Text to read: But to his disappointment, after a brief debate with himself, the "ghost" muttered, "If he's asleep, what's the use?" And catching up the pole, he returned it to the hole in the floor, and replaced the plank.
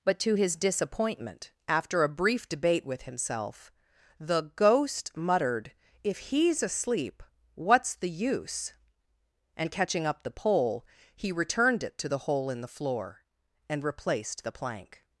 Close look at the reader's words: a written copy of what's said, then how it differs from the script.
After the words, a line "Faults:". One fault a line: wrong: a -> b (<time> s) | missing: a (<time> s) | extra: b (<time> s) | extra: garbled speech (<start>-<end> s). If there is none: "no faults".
But to his disappointment, after a brief debate with himself, the "ghost" muttered, "If he's asleep, what's the use?" And catching up the pole, he returned it to the hole in the floor, and replaced the plank.
Faults:
no faults